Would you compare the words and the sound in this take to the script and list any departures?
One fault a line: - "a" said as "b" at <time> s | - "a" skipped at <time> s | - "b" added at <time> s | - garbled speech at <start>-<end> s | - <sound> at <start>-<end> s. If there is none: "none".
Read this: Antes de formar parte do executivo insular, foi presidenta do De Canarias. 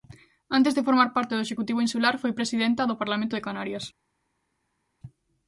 - "Parlamento" added at 3.0 s